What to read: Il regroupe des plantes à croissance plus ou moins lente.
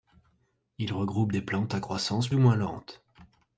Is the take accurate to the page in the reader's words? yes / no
no